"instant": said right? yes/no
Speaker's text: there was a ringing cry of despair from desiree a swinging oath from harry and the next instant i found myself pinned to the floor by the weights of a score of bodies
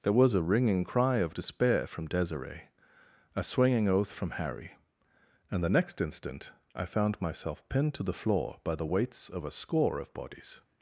yes